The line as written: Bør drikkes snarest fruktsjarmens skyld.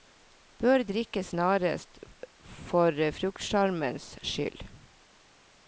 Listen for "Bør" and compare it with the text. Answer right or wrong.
right